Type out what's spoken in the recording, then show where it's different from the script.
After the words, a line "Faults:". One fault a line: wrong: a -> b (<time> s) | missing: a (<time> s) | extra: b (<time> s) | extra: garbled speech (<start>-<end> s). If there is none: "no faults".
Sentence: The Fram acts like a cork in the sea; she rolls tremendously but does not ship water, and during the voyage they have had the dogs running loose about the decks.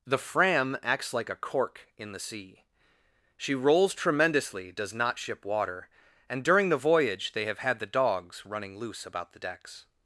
The Fram acts like a cork in the sea; she rolls tremendously does not ship water, and during the voyage they have had the dogs running loose about the decks.
Faults:
missing: but (4.7 s)